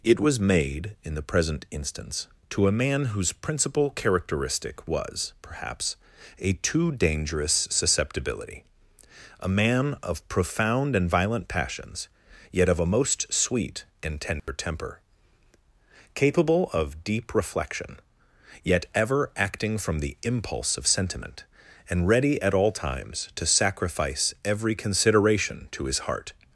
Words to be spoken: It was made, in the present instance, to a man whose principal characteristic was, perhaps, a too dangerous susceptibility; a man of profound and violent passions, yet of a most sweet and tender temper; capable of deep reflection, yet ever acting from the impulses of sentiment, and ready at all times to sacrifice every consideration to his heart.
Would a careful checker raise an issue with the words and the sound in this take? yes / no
yes